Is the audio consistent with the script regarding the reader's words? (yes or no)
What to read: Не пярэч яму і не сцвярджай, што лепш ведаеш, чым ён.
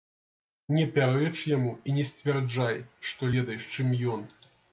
no